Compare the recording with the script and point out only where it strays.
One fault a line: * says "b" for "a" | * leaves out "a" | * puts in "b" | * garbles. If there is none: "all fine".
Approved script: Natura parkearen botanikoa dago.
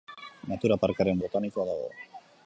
all fine